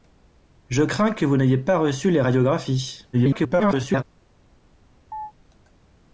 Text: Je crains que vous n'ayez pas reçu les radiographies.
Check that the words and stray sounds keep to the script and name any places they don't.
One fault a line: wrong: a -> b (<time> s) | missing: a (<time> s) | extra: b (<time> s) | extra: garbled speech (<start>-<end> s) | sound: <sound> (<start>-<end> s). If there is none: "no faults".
extra: garbled speech (3.1-4.0 s)
sound: chirp (5.1-5.3 s)